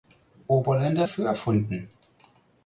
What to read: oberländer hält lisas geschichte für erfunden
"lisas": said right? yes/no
no